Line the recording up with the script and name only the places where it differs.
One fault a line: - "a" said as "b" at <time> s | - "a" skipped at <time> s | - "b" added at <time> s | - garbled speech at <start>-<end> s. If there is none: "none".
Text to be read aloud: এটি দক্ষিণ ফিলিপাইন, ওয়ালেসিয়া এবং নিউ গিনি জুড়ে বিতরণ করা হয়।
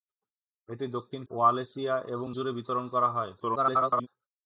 - "ফিলিপাইন" skipped at 1.2 s
- "নিউ গিনি" skipped at 2.3 s
- garbled speech at 3.4-4.1 s